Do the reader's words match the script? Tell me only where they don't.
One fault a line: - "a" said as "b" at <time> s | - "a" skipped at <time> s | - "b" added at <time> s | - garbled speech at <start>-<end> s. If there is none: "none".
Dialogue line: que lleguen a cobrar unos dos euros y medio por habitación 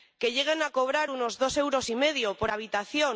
none